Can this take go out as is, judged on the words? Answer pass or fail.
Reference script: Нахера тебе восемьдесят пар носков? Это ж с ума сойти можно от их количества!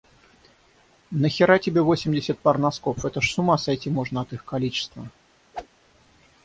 pass